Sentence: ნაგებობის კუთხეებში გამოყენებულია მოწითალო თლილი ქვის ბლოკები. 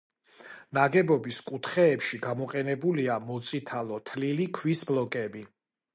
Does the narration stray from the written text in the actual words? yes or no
no